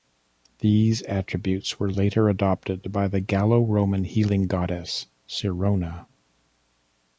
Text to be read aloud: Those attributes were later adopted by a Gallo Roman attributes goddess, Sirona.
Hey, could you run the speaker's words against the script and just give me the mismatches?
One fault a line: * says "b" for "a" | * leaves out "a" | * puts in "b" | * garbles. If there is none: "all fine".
* says "These" for "Those"
* says "the" for "a"
* says "healing" for "attributes"